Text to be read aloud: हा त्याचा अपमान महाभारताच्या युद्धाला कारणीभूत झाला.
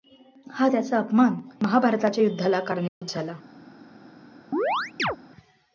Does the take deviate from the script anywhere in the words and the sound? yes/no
yes